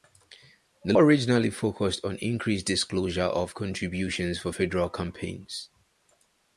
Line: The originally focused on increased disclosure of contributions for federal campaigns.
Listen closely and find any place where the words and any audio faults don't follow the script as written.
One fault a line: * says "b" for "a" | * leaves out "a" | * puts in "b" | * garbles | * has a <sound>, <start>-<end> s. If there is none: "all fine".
all fine